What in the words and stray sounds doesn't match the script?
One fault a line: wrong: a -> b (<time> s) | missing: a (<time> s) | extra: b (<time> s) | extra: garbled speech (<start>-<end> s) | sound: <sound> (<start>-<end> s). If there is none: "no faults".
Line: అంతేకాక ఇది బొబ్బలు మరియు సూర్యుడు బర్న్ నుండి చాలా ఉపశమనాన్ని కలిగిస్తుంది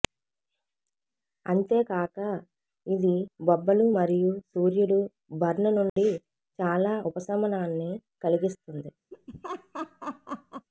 sound: dropout (5.9-6.0 s)
sound: laugh (9.1-10.7 s)